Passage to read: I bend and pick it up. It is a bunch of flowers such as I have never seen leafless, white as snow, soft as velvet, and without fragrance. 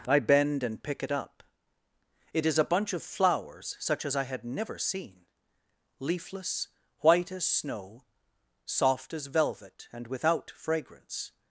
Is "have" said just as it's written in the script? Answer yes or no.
no